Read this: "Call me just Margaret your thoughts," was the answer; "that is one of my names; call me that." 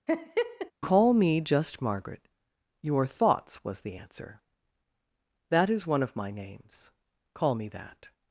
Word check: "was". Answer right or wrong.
right